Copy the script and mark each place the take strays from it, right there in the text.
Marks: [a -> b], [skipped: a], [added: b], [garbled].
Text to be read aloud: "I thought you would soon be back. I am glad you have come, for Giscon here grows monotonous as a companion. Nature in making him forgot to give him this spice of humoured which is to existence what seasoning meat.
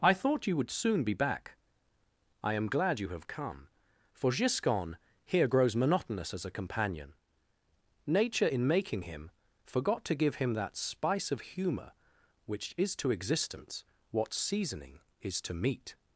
"I thought you would soon be back. I am glad you have come, for Giscon here grows monotonous as a companion. Nature in making him forgot to give him [this -> that] spice of [humoured -> humour] which is to existence what seasoning [added: is to] meat.